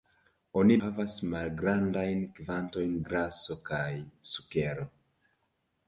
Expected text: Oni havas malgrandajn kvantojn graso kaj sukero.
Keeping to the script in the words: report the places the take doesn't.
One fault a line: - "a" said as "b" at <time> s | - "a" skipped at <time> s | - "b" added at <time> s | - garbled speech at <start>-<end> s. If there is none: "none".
none